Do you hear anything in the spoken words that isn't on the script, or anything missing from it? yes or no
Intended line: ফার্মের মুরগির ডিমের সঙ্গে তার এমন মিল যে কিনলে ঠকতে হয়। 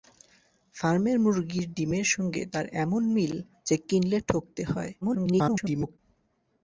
yes